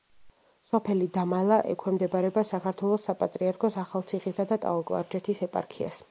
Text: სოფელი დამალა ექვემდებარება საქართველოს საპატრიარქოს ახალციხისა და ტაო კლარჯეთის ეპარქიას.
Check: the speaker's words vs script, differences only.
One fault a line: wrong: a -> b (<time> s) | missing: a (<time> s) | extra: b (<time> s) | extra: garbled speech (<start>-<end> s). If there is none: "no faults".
no faults